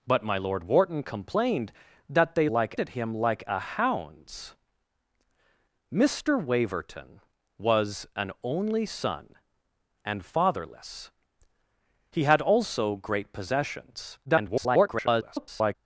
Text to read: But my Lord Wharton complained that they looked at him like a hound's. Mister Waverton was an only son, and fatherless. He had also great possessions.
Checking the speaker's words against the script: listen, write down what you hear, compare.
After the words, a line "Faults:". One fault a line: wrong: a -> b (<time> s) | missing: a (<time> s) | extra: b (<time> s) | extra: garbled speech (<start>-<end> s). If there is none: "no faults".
But my Lord Wharton complained that they like at him like a hound's. Mister Waverton was an only son, and fatherless. He had also great possessions. [garbled]
Faults:
wrong: looked -> like (2.5 s)
extra: garbled speech (14.3-15.7 s)